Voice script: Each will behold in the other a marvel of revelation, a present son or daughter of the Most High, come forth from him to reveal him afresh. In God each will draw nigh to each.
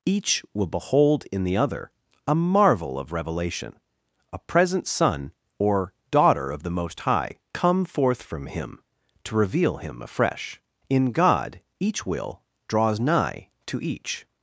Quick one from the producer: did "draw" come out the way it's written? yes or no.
no